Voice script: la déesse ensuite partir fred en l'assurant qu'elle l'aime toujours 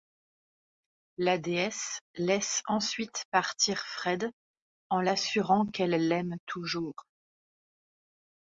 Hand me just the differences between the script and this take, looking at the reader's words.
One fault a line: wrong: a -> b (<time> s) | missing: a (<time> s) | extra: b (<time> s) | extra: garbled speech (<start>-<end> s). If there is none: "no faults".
extra: laisse (2.2 s)